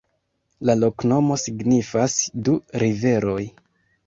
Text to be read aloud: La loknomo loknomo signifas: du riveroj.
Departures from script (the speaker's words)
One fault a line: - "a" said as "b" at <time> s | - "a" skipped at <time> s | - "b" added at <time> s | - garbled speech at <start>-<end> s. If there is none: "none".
- "loknomo" skipped at 1.4 s